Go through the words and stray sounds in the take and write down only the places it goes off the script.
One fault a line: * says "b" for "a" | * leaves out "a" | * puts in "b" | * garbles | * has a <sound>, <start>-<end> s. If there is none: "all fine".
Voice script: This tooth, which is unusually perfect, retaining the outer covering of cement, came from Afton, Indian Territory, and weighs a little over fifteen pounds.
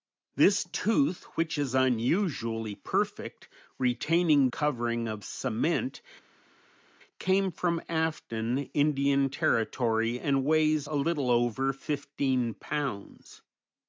* leaves out "the outer"